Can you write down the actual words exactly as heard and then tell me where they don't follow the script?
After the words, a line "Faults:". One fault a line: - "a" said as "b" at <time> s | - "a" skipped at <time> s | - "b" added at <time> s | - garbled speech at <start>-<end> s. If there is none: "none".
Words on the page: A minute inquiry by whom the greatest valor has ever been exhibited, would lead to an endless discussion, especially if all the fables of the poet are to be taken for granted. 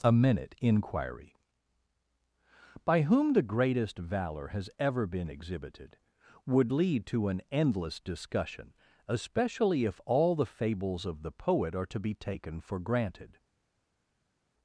A minute inquiry by whom the greatest valor has ever been exhibited, would lead to an endless discussion, especially if all the fables of the poet are to be taken for granted.
Faults:
none